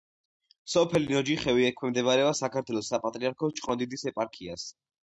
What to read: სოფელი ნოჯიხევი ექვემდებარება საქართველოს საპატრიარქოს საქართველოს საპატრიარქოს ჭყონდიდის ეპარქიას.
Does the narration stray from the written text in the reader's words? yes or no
yes